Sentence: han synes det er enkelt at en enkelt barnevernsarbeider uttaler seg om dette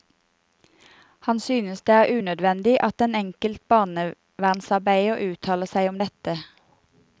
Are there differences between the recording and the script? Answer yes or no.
yes